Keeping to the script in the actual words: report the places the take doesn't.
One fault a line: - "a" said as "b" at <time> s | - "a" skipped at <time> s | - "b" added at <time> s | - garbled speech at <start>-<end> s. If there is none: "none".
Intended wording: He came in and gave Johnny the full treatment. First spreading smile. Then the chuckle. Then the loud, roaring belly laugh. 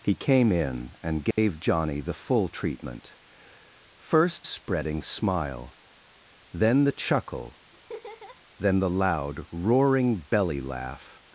none